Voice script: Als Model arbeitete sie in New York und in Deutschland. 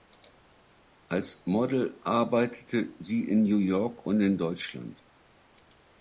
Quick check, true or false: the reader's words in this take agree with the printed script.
true